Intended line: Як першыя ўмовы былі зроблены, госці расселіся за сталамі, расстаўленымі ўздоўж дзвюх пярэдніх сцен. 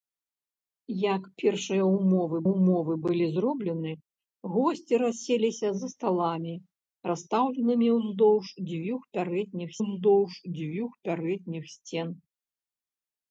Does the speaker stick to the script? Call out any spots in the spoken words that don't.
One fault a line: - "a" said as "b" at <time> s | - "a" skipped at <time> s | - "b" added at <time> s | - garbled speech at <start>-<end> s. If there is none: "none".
- "ўмовы" added at 2.5 s
- "ўздоўж дзвюх пярэдніх" added at 9.8 s